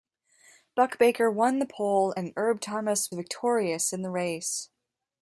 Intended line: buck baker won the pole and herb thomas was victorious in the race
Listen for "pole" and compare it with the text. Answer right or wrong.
right